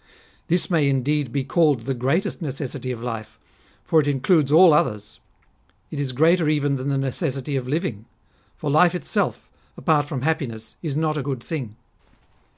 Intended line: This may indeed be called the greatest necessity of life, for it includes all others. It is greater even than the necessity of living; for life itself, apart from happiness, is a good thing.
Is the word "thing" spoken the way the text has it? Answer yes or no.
yes